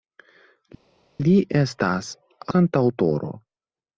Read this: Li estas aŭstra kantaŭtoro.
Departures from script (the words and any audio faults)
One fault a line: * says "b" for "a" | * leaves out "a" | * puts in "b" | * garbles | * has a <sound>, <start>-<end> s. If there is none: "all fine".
* leaves out "aŭstra"